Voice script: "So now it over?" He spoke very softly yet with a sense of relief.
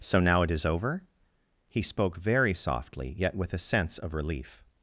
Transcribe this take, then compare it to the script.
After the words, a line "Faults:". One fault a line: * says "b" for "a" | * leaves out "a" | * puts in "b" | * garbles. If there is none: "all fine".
"So now it is over?" He spoke very softly yet with a sense of relief.
Faults:
* puts in "is"